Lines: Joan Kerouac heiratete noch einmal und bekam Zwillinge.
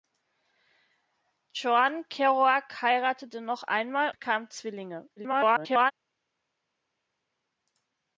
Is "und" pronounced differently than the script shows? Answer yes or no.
yes